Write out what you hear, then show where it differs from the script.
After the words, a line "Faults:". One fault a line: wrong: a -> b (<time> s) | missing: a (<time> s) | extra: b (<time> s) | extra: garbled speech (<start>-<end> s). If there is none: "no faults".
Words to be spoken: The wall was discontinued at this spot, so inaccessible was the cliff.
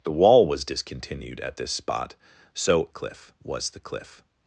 The wall was discontinued at this spot, so cliff was the cliff.
Faults:
wrong: inaccessible -> cliff (2.9 s)